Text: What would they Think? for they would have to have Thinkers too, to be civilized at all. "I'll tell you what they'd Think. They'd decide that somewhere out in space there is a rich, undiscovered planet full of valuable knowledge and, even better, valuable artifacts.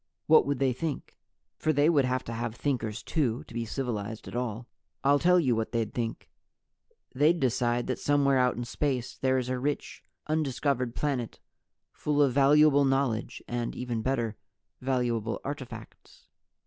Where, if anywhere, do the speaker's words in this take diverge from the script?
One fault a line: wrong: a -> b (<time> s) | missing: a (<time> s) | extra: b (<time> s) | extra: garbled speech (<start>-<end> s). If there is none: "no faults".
no faults